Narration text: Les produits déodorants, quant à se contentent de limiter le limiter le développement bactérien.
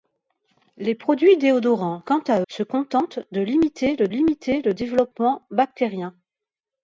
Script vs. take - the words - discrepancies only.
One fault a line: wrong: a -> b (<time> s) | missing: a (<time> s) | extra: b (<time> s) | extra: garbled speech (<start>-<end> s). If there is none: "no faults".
no faults